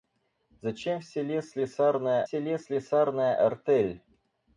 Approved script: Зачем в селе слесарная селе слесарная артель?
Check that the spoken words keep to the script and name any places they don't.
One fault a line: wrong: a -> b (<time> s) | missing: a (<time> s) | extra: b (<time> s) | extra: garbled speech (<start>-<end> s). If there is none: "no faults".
no faults